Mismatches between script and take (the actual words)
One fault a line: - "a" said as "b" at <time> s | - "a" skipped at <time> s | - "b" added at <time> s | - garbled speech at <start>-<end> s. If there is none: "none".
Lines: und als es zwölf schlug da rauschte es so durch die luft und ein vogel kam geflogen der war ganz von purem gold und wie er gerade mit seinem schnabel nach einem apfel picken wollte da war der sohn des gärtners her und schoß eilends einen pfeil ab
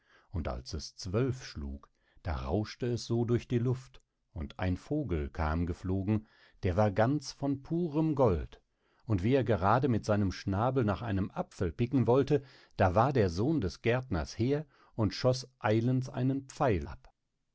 none